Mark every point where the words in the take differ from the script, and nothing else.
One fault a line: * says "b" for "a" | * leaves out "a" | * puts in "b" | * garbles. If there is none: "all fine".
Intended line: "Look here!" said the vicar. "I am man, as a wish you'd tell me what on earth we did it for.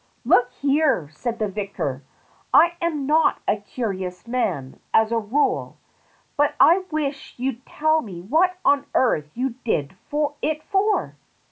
* puts in "not a curious"
* puts in "rule but I"
* says "you" for "we"